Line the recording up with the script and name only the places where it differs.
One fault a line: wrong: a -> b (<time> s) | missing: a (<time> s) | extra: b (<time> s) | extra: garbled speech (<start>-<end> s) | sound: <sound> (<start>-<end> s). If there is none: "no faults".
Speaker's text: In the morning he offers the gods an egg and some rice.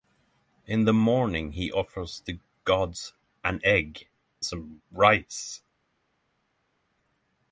missing: and (4.1 s)